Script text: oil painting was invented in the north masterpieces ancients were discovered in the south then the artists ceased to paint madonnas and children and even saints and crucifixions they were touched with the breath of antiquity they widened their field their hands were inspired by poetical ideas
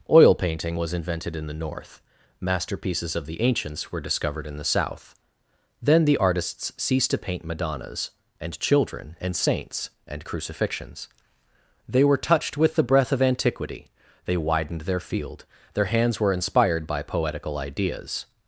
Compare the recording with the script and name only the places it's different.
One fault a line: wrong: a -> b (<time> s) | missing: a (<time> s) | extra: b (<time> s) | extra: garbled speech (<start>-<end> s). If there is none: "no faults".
extra: of the (3.1 s)
missing: even (9.3 s)